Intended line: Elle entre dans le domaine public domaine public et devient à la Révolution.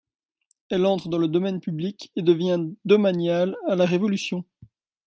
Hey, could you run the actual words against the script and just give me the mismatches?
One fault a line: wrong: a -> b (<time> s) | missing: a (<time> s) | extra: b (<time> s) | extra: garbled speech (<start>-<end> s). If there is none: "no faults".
missing: domaine public (2.1 s)
extra: domaniale (2.9 s)